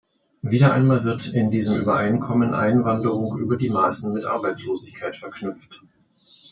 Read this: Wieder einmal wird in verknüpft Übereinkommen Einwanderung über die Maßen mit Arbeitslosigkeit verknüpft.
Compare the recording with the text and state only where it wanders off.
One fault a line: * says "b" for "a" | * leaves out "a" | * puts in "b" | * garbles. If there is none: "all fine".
* says "diesem" for "verknüpft"